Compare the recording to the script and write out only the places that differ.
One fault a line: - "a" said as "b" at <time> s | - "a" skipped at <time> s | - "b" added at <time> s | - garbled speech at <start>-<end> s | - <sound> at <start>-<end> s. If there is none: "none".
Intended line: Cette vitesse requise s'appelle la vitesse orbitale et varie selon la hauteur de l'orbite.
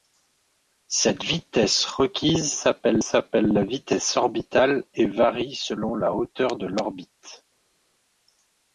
- "s'appelle" added at 3.0 s